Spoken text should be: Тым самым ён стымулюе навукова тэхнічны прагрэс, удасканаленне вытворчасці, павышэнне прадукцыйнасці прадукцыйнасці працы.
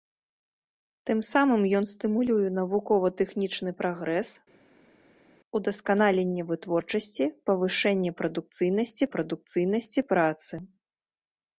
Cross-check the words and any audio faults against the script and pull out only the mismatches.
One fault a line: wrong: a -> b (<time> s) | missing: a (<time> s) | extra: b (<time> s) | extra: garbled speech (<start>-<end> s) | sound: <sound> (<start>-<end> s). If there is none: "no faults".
no faults